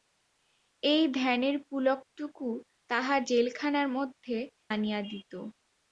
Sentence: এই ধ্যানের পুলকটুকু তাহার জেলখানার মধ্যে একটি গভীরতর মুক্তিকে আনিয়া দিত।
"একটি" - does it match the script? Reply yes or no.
no